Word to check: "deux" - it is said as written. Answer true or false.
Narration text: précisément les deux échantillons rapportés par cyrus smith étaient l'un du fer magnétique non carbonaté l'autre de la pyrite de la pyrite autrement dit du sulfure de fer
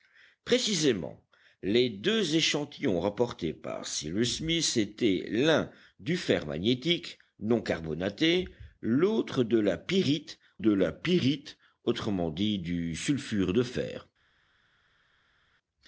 true